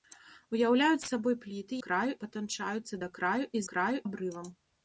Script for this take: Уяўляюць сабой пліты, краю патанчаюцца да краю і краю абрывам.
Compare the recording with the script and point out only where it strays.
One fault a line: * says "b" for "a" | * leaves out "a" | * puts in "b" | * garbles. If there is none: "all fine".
all fine